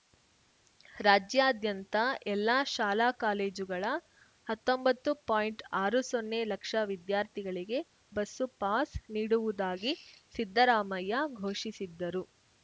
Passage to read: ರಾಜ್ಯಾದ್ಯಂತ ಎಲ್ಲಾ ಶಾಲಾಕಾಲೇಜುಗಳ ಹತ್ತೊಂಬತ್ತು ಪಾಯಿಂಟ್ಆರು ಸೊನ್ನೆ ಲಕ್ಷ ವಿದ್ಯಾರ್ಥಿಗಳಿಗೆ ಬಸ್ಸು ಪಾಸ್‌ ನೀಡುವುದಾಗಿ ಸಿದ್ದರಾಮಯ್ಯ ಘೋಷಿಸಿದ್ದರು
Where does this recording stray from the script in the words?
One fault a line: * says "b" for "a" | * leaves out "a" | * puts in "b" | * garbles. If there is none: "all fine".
all fine